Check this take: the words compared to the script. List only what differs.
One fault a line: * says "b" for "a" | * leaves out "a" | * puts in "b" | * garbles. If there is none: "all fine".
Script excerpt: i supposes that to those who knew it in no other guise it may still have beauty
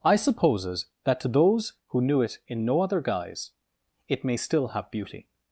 all fine